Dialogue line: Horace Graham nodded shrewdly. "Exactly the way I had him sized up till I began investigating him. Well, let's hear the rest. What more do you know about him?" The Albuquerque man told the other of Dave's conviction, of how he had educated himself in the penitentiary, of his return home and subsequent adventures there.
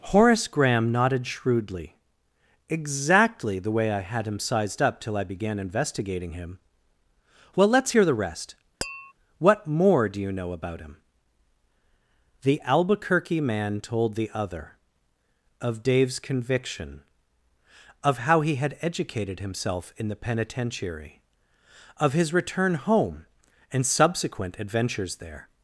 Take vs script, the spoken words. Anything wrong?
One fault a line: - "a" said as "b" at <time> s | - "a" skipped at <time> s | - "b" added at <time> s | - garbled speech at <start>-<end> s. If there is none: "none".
none